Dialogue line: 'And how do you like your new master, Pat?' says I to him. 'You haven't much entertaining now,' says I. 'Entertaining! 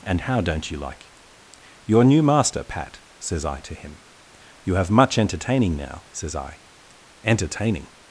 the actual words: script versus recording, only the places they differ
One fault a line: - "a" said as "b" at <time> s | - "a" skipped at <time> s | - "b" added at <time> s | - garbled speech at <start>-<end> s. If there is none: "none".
- "do" said as "don't" at 0.4 s
- "haven't" said as "have" at 4.8 s